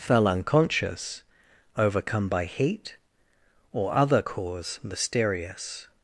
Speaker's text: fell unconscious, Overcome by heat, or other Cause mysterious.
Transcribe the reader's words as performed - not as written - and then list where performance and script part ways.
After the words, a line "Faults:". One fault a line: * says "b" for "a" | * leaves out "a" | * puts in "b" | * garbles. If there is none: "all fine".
fell unconscious, Overcome by heat, or other Cause mysterious.
Faults:
all fine